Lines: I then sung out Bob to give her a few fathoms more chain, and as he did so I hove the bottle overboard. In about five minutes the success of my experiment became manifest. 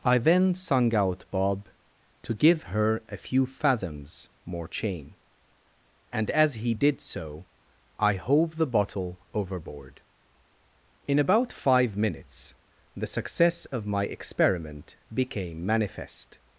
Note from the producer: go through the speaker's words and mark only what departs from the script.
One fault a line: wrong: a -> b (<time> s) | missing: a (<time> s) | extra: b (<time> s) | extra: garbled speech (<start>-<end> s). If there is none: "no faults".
no faults